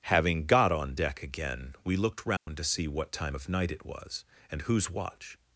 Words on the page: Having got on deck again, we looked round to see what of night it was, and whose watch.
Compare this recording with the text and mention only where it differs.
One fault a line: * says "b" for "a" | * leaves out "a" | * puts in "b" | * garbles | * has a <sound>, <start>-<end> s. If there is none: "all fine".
* has a dropout, 2.4-2.5 s
* puts in "time"